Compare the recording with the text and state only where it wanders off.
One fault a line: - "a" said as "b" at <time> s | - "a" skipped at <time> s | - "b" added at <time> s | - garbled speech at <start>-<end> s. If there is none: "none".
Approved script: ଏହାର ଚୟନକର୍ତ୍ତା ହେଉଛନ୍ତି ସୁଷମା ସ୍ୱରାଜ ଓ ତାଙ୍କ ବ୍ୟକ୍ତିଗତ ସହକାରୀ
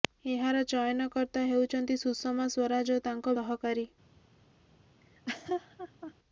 - "ବ୍ୟକ୍ତିଗତ" skipped at 3.4 s